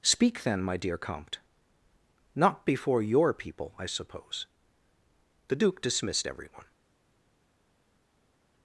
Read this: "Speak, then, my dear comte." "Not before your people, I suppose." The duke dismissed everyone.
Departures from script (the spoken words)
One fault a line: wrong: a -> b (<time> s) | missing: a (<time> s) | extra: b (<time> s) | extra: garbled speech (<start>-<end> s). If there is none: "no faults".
no faults